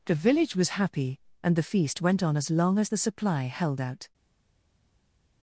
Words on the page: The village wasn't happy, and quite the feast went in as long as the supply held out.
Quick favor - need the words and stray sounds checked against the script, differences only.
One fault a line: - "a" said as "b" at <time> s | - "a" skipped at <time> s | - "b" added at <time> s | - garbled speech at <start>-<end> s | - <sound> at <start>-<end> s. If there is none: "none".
- "wasn't" said as "was" at 0.6 s
- "quite" skipped at 1.6 s
- "in" said as "on" at 2.2 s